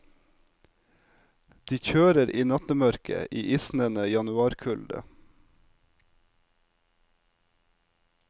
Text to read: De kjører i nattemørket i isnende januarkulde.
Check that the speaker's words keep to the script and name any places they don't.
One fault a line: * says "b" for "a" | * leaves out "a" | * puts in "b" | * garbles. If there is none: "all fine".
all fine